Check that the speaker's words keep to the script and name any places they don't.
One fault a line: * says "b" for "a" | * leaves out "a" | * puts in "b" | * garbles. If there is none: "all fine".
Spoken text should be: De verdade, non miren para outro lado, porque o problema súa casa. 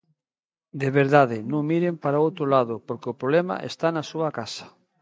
* puts in "está na"